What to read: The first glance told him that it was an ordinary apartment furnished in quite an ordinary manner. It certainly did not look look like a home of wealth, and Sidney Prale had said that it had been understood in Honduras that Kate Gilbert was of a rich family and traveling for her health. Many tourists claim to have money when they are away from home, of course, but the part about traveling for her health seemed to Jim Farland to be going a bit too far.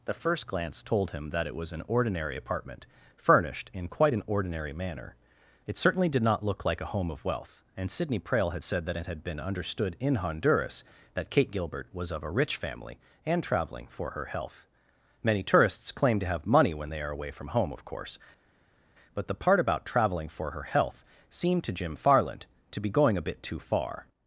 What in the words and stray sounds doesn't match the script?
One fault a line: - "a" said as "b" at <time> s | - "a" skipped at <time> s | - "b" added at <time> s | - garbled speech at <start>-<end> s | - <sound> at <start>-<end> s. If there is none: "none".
- "look" skipped at 6.6 s